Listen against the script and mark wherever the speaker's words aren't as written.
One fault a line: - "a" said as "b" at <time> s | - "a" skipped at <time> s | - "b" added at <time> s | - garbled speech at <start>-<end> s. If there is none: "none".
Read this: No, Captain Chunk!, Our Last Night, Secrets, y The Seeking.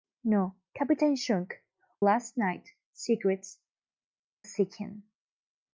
- "Our" skipped at 1.5 s
- "y The" skipped at 3.6 s